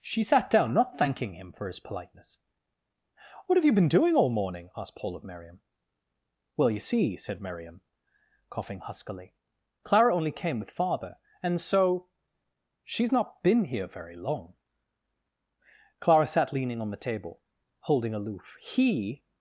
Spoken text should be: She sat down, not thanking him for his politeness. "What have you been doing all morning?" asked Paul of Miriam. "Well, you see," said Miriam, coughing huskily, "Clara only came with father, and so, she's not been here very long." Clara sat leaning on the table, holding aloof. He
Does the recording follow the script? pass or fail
pass